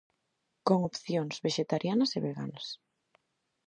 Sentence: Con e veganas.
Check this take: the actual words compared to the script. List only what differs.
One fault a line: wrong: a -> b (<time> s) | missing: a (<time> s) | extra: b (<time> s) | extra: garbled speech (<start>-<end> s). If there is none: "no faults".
extra: opcións vexetarianas (0.9 s)